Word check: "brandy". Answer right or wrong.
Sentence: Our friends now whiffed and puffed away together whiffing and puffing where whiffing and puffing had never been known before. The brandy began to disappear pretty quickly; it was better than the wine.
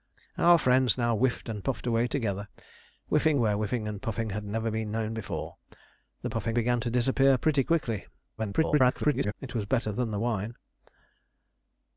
wrong